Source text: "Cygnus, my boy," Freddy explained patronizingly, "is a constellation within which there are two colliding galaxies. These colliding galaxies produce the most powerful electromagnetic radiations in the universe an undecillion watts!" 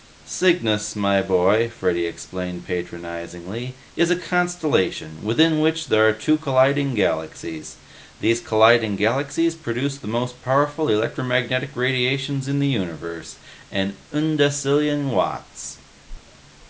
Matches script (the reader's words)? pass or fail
pass